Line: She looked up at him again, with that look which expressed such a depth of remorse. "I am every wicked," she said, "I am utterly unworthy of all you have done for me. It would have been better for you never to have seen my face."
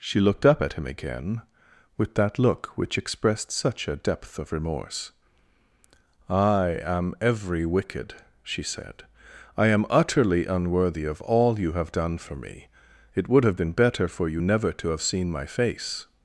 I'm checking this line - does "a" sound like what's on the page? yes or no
yes